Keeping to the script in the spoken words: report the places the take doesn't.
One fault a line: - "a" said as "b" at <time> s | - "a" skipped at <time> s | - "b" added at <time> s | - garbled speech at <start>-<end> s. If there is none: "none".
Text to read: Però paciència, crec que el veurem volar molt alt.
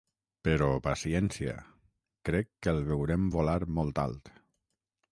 none